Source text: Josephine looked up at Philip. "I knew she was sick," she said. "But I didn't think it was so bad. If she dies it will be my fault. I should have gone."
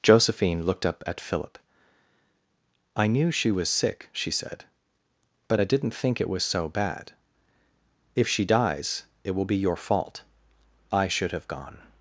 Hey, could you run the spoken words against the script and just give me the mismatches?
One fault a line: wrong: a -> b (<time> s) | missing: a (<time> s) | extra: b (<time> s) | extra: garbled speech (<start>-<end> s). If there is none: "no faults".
wrong: my -> your (9.6 s)